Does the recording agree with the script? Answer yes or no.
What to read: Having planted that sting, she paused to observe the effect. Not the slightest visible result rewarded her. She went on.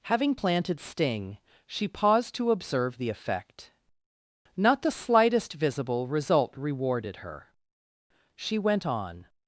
no